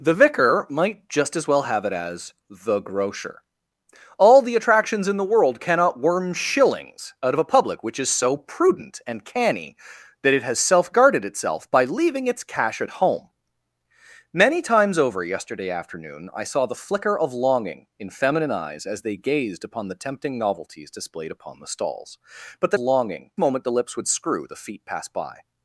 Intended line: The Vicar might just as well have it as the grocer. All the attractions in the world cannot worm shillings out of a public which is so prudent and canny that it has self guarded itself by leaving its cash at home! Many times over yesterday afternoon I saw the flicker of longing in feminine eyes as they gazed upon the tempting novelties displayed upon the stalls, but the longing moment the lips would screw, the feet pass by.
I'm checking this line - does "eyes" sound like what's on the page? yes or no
yes